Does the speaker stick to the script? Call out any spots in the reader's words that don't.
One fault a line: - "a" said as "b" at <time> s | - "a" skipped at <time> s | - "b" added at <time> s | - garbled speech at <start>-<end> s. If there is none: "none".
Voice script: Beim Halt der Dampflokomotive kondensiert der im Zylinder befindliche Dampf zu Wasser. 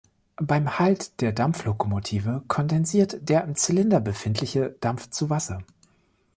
none